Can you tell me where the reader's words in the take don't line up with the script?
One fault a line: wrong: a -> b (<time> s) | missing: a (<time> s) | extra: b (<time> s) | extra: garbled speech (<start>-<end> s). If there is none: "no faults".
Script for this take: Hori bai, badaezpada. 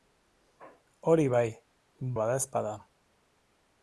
no faults